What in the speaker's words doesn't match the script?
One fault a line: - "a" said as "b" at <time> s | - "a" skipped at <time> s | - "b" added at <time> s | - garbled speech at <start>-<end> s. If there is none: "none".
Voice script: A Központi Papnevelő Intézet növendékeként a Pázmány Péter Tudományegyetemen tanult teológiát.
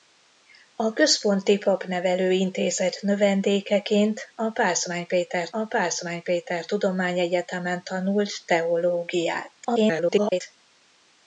- "a Pázmány Péter" added at 5.5 s
- garbled speech at 9.6-10.4 s